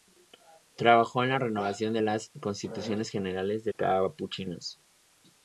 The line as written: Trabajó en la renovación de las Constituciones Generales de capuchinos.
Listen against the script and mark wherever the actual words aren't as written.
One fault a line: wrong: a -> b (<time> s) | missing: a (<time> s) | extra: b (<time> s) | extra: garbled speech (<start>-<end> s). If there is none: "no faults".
no faults